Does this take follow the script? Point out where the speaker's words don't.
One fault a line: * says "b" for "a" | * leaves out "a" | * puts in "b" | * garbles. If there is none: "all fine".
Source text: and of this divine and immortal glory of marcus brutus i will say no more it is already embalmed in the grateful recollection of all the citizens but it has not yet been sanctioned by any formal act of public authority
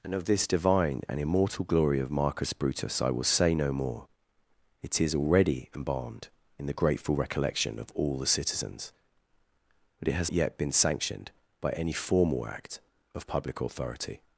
* leaves out "not"